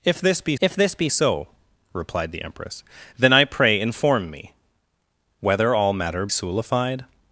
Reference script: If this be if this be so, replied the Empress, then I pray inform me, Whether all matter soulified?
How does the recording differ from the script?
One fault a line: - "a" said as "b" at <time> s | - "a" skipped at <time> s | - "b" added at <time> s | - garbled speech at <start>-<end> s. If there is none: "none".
none